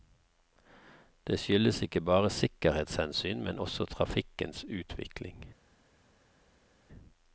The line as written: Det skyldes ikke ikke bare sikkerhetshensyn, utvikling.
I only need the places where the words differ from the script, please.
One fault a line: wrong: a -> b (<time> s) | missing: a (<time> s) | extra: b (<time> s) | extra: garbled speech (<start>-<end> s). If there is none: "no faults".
missing: ikke (2.0 s)
extra: men også trafikkens (3.4 s)